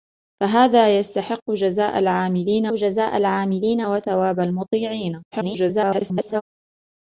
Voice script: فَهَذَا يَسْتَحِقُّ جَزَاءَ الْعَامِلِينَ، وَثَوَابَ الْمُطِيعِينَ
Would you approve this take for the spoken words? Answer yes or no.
no